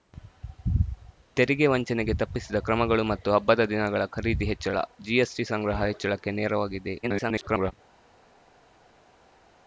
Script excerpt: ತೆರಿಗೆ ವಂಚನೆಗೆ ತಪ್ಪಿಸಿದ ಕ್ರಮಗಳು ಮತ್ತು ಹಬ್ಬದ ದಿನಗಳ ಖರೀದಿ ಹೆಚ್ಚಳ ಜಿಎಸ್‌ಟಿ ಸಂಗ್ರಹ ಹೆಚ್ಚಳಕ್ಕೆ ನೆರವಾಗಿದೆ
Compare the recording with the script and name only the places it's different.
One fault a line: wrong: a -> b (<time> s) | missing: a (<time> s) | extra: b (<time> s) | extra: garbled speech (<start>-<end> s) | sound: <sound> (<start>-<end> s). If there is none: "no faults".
extra: garbled speech (7.0-7.7 s)